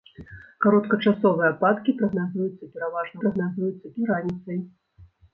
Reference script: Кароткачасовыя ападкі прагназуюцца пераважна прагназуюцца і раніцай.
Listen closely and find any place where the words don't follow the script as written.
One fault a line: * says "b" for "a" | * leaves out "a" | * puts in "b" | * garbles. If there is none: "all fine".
all fine